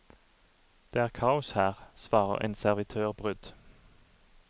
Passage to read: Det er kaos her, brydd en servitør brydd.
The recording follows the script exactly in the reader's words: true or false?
false